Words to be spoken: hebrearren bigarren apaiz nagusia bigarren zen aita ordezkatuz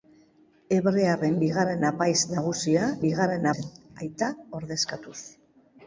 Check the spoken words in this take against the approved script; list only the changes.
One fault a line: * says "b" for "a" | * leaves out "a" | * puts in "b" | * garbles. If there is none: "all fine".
all fine